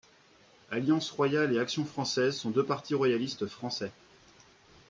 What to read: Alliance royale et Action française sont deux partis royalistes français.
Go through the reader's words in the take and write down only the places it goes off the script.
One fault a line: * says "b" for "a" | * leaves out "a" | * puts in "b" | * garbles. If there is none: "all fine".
all fine